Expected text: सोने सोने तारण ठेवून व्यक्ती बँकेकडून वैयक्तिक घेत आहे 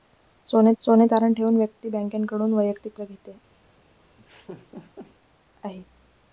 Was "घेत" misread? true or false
false